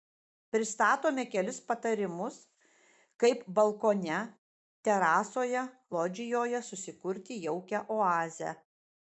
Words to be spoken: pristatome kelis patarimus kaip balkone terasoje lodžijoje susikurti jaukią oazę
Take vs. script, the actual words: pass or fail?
pass